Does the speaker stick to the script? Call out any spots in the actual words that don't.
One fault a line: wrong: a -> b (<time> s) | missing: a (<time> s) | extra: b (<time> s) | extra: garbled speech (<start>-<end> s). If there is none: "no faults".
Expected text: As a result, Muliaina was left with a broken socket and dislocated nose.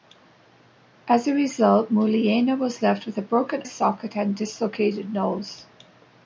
no faults